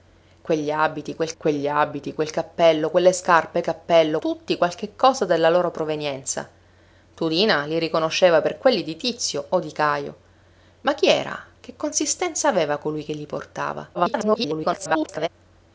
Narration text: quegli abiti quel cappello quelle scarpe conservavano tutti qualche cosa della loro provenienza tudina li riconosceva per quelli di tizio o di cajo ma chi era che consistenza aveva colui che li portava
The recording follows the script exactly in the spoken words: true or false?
false